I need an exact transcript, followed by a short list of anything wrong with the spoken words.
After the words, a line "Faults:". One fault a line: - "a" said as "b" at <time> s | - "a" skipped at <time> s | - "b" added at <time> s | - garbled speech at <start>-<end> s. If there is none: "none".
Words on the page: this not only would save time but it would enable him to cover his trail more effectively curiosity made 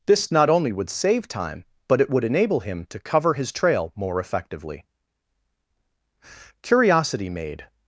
this not only would save time but it would enable him to cover his trail more effectively curiosity made
Faults:
none